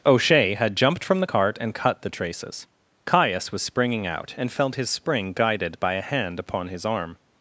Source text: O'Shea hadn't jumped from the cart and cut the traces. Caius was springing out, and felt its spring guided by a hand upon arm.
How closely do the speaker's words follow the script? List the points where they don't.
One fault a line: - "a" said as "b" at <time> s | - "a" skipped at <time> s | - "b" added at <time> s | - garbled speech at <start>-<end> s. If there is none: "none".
- "hadn't" said as "had" at 0.6 s
- "its" said as "his" at 4.7 s
- "his" added at 6.7 s